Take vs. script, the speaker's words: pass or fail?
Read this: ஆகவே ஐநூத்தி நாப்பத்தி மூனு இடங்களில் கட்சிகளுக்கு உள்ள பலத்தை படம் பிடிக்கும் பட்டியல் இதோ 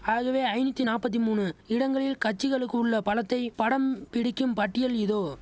pass